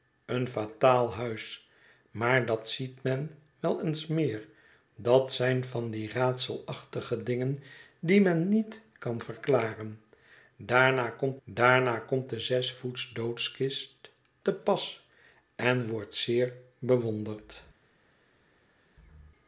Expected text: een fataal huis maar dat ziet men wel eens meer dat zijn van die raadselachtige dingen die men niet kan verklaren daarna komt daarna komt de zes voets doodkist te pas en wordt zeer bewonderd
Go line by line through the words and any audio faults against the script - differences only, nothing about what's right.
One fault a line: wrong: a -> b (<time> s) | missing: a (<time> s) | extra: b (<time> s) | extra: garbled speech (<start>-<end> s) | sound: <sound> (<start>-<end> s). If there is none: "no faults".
no faults